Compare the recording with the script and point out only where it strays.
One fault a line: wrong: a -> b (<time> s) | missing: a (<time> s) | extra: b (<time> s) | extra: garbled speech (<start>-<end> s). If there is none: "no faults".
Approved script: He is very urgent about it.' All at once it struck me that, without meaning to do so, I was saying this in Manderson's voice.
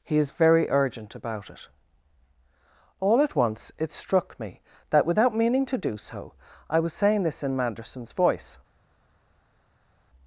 no faults